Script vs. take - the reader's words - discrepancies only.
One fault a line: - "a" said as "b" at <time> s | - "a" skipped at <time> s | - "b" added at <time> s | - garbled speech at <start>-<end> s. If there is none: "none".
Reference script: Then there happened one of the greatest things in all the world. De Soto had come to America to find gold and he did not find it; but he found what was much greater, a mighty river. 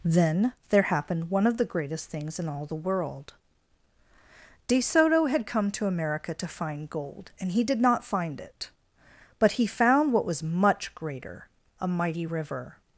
none